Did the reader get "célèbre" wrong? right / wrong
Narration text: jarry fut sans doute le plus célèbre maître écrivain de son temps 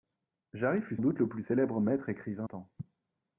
right